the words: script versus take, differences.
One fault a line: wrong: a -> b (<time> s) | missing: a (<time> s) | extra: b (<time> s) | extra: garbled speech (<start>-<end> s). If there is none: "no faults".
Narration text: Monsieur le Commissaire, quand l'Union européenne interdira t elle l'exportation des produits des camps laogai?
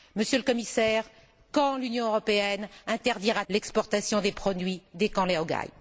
missing: t elle (3.5 s)